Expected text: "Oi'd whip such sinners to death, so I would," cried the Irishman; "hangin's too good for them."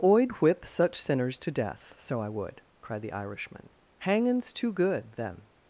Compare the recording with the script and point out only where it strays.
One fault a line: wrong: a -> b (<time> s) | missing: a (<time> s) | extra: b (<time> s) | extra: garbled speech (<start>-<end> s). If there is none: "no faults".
missing: for (5.1 s)